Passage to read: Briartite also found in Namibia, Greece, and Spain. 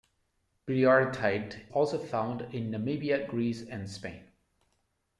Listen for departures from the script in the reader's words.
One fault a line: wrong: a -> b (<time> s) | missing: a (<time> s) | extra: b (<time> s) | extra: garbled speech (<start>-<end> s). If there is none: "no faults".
no faults